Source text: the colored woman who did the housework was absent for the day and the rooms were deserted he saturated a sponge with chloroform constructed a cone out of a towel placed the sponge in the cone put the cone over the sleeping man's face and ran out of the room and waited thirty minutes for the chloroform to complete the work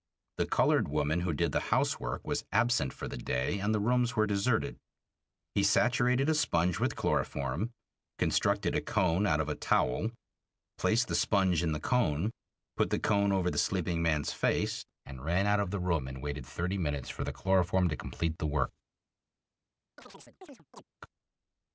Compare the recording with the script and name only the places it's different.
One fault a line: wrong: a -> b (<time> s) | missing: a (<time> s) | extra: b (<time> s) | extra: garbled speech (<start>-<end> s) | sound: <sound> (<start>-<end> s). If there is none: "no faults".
sound: chirp (20.0-20.8 s)